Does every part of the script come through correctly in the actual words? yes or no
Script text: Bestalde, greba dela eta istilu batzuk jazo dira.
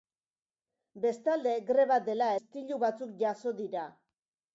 no